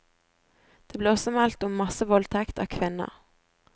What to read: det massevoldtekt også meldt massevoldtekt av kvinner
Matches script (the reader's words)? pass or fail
fail